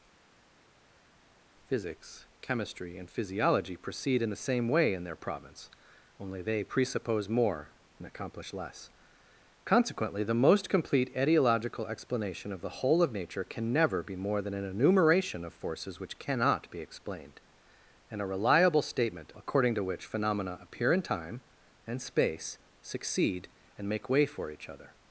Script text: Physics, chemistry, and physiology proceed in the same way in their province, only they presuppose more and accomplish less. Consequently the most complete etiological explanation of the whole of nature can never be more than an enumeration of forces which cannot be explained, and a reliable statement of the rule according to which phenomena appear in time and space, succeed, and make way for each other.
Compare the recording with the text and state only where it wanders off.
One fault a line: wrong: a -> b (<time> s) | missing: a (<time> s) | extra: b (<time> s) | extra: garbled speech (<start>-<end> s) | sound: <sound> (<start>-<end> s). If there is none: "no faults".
missing: of the rule (19.3 s)